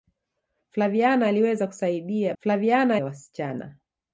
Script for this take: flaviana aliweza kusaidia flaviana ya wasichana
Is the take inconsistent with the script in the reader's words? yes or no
no